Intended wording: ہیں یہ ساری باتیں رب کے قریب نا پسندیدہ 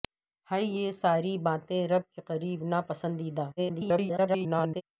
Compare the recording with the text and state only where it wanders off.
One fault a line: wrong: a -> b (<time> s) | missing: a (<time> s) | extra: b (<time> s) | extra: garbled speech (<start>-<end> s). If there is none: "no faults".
extra: garbled speech (3.6-4.8 s)